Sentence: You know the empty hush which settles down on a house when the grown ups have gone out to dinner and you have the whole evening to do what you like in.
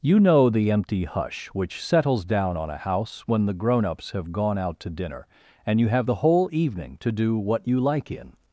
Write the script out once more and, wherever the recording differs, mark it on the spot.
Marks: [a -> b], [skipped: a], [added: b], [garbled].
You know the empty hush which settles down on a house when the grown ups have gone out to dinner and you have the whole evening to do what you like in.